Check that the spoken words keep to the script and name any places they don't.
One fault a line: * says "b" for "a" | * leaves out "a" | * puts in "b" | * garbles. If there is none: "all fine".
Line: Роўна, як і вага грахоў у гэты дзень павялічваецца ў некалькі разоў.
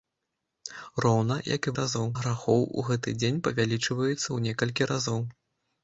* says "разоў" for "вага"